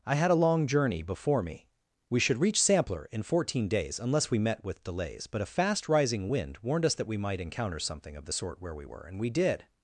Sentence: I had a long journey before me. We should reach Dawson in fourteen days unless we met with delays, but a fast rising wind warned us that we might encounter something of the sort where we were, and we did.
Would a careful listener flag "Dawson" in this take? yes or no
yes